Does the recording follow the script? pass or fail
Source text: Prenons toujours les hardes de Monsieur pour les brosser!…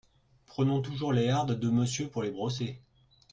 pass